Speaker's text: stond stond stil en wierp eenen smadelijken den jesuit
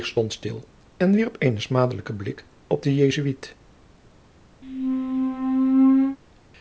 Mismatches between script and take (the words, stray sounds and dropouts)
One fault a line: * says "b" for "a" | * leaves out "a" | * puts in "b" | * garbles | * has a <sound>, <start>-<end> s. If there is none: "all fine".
* leaves out "stond"
* puts in "blik op"
* has a squeak, 4.6-6.2 s